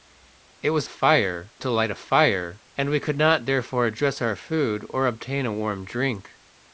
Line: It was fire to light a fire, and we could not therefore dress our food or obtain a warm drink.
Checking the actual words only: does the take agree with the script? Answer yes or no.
yes